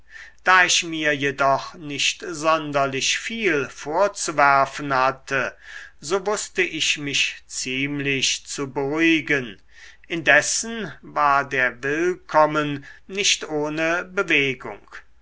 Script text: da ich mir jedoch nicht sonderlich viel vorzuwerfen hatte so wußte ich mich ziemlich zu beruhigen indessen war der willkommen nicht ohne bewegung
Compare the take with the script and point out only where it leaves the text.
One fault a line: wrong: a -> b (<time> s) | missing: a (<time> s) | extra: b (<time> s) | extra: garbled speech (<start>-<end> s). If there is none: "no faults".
no faults